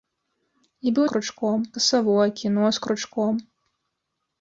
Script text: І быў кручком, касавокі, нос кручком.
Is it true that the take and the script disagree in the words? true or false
false